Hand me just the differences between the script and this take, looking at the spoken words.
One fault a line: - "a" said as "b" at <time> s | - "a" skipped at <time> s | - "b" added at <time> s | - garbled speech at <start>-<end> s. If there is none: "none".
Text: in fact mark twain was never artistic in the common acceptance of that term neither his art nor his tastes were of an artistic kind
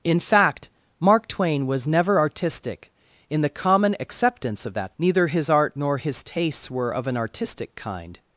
- "term" skipped at 5.0 s